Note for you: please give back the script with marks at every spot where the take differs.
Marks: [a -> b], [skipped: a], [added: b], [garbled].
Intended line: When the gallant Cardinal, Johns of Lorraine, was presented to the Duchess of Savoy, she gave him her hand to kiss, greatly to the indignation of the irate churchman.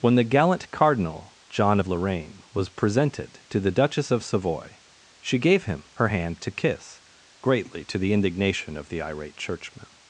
When the gallant Cardinal, [Johns -> John] of Lorraine, was presented to the Duchess of Savoy, she gave him her hand to kiss, greatly to the indignation of the irate churchman.